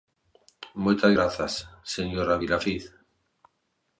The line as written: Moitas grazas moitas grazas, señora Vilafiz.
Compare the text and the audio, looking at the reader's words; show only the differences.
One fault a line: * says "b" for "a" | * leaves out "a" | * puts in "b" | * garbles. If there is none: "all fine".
* leaves out "moitas grazas"